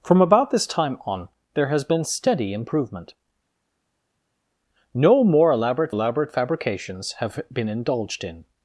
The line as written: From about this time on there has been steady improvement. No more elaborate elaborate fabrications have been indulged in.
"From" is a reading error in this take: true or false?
false